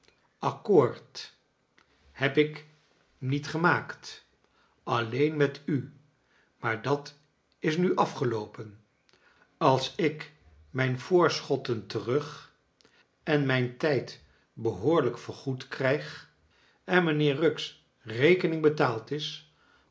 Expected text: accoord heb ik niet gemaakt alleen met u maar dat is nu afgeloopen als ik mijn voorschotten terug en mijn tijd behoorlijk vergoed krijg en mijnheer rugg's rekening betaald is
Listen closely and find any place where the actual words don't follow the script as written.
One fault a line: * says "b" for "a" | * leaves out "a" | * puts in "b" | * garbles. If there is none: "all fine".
all fine